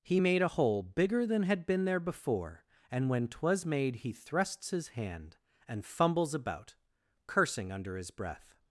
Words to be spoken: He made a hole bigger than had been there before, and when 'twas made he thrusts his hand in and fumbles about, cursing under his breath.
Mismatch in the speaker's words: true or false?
true